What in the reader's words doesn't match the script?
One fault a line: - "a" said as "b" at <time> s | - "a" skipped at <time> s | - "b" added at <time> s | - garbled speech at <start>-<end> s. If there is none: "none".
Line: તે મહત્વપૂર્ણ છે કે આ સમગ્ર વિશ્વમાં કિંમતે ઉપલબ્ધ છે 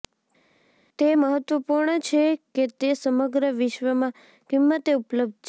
- "આ" said as "તે" at 2.8 s